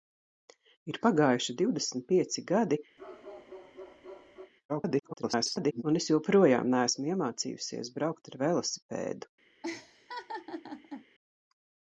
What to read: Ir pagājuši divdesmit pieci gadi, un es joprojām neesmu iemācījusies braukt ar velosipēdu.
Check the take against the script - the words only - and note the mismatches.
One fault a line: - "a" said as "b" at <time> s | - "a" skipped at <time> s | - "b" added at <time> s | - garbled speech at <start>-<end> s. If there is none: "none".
- garbled speech at 4.7-5.8 s